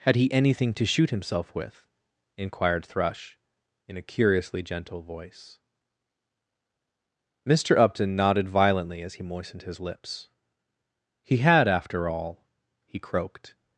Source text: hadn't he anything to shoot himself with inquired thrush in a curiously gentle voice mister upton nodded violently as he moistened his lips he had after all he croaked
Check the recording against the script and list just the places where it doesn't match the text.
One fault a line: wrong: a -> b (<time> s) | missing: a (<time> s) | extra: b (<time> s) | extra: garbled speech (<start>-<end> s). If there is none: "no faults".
wrong: hadn't -> had (0.0 s)